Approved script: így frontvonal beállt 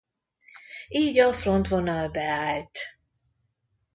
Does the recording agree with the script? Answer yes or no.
no